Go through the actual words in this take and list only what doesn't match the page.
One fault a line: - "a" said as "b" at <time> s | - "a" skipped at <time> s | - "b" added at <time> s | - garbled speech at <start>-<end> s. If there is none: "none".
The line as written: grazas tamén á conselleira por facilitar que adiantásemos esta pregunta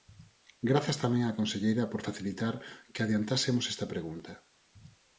none